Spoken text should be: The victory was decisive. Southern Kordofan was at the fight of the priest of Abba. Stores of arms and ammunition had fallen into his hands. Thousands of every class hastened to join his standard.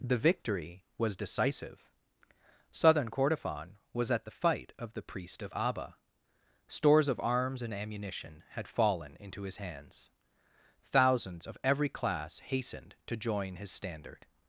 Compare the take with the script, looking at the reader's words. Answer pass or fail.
pass